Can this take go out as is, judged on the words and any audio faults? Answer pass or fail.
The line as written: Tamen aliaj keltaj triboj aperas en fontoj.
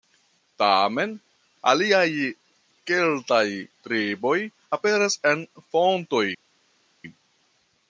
pass